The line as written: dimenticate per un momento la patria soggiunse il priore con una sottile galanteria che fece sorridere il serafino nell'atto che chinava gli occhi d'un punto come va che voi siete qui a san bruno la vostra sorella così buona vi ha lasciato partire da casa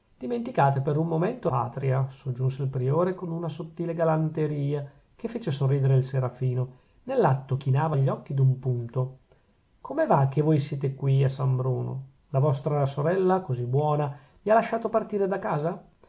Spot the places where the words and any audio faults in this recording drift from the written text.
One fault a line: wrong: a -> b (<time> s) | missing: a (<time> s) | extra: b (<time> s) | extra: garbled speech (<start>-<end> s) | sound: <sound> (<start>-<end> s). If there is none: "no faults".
missing: la (1.5 s)
missing: che (7.6 s)